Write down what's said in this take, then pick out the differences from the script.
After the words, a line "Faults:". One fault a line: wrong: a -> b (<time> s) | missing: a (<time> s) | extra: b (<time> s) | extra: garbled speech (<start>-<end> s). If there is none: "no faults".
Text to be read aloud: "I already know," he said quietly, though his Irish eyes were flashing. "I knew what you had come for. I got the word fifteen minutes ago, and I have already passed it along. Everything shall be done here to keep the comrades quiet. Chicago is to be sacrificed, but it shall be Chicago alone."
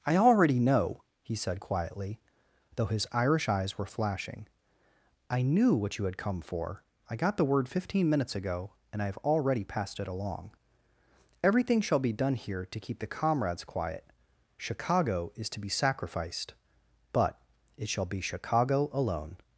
"I already know," he said quietly, though his Irish eyes were flashing. "I knew what you had come for. I got the word fifteen minutes ago, and I have already passed it along. Everything shall be done here to keep the comrades quiet. Chicago is to be sacrificed, but it shall be Chicago alone."
Faults:
no faults